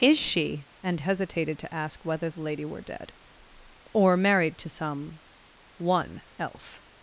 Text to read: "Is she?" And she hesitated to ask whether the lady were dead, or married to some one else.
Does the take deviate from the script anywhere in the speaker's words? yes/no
yes